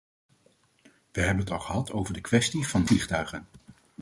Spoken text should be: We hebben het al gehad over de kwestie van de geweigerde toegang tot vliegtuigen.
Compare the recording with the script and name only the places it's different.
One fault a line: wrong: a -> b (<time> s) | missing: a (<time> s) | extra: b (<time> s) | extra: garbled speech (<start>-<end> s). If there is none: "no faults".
missing: geweigerde toegang tot (2.9 s)